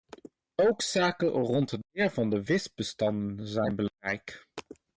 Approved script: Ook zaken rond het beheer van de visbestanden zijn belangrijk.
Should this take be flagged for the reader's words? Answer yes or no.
no